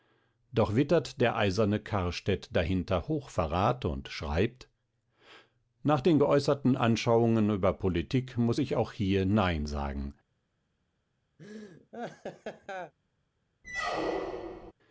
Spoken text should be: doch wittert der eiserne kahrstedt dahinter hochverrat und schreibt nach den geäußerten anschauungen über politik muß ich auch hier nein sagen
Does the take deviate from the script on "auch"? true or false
false